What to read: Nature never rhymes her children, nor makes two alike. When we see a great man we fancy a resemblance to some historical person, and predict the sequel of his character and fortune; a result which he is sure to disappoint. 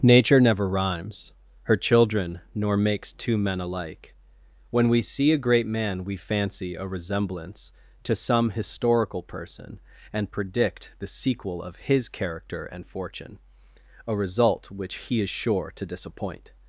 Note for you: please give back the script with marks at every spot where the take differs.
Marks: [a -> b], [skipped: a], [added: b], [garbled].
Nature never rhymes her children, nor makes two [added: men] alike. When we see a great man we fancy a resemblance to some historical person, and predict the sequel of his character and fortune; a result which he is sure to disappoint.